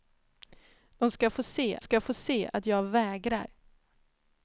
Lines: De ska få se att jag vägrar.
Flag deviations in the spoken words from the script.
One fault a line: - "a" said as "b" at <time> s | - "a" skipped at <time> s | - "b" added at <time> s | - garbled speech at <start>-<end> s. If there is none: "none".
- "ska få se" added at 1.8 s